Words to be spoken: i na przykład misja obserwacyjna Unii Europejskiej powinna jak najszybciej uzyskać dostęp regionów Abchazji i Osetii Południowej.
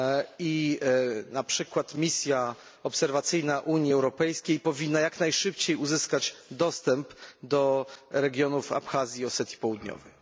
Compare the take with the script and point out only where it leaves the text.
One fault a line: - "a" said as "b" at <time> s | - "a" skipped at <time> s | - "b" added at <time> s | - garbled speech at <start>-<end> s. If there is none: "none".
- "do" added at 7.4 s